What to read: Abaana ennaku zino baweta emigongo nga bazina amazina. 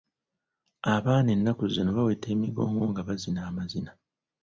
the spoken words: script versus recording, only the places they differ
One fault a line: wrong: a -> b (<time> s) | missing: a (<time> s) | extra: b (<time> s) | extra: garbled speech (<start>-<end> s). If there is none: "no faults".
no faults